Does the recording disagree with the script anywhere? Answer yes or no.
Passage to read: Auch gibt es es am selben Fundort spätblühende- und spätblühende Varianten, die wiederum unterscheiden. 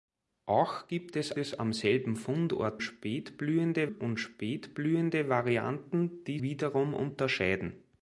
no